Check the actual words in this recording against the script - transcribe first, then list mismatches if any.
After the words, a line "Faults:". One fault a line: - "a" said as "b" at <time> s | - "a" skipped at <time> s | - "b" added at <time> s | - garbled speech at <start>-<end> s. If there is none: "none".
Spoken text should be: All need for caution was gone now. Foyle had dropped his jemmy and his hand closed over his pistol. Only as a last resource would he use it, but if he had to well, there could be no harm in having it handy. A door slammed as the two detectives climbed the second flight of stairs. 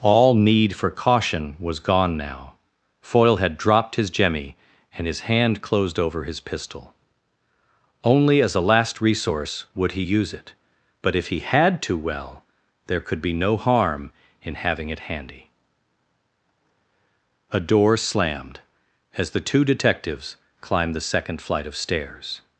All need for caution was gone now. Foyle had dropped his jemmy and his hand closed over his pistol. Only as a last resource would he use it, but if he had to well, there could be no harm in having it handy. A door slammed as the two detectives climbed the second flight of stairs.
Faults:
none